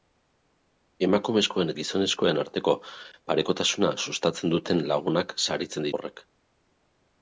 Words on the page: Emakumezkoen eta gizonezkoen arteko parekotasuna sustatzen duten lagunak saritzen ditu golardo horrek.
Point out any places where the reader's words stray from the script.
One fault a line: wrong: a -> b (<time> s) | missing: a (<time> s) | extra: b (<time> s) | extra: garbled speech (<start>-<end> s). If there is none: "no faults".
missing: eta (1.7 s)
missing: ditu golardo (5.9 s)